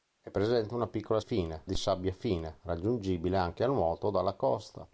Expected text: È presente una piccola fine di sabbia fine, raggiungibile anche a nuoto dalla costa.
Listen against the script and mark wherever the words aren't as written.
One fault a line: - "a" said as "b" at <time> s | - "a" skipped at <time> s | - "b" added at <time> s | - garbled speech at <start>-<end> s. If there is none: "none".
none